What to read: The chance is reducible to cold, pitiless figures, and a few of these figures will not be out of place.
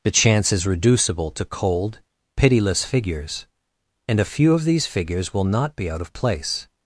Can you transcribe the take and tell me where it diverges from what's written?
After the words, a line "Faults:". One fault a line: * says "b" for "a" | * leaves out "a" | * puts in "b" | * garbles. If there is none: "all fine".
The chance is reducible to cold, pitiless figures, and a few of these figures will not be out of place.
Faults:
all fine